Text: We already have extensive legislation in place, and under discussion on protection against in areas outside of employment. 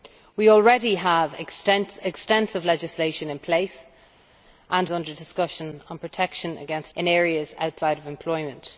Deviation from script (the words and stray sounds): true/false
false